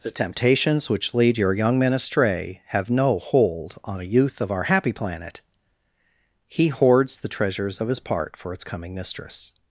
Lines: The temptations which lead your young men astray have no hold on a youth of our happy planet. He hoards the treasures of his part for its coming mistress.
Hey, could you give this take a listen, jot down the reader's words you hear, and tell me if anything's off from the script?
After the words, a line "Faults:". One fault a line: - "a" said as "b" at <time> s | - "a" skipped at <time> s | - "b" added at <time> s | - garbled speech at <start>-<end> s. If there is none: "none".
The temptations which lead your young men astray have no hold on a youth of our happy planet. He hoards the treasures of his part for its coming mistress.
Faults:
none